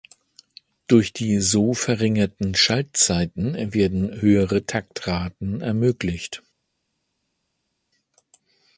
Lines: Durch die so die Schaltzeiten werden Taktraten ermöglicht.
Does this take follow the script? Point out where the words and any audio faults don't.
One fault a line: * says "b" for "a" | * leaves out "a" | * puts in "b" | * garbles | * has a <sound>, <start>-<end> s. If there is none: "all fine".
* says "verringerten" for "die"
* puts in "höhere"